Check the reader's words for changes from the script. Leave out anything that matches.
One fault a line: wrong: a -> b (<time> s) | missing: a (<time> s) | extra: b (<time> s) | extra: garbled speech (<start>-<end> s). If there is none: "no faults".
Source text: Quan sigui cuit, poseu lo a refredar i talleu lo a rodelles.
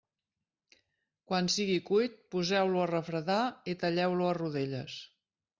no faults